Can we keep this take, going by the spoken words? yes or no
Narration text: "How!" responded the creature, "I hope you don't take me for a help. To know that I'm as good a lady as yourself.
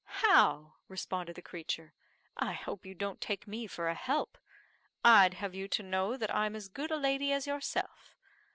no